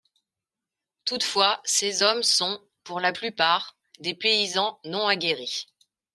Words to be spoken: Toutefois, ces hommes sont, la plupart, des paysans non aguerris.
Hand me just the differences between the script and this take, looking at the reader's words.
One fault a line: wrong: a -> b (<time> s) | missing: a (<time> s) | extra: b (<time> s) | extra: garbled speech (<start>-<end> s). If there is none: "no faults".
extra: pour (2.8 s)